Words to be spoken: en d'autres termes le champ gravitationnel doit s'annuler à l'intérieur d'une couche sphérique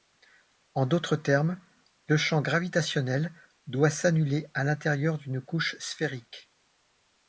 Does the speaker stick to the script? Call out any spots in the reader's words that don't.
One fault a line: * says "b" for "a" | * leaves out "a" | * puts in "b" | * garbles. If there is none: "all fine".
all fine